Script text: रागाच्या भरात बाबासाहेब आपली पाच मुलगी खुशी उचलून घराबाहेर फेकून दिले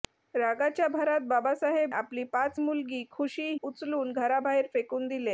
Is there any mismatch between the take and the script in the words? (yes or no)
no